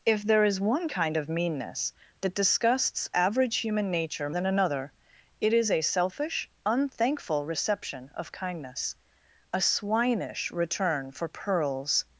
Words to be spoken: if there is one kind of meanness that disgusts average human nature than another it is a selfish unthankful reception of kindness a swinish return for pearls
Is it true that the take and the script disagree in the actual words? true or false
false